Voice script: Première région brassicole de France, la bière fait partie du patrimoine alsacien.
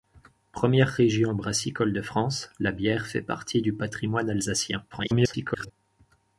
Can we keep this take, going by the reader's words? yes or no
no